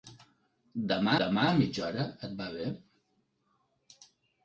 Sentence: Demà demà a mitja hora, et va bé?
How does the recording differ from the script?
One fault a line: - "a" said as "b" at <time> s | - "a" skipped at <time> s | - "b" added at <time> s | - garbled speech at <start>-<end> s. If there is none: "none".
none